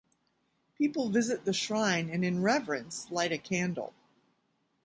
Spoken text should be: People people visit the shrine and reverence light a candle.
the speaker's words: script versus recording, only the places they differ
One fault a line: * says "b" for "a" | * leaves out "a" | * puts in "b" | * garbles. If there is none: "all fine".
* leaves out "people"
* puts in "in"